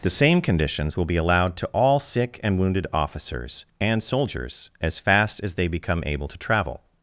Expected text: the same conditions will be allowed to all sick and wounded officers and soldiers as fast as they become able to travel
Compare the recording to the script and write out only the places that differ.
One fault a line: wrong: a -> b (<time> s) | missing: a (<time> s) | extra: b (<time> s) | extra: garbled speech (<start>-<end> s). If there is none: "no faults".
no faults